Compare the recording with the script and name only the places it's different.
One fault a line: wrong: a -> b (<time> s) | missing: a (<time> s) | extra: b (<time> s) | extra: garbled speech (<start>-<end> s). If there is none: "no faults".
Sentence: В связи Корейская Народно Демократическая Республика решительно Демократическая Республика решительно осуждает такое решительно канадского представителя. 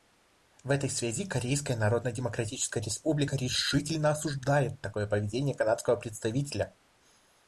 extra: этой (0.7 s)
missing: Демократическая Республика решительно (4.1 s)
wrong: решительно -> поведение (5.0 s)